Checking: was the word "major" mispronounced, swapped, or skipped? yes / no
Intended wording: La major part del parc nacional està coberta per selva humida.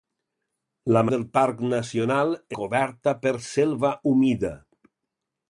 yes